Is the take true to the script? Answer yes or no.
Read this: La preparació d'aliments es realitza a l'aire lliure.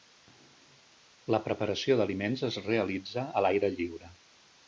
yes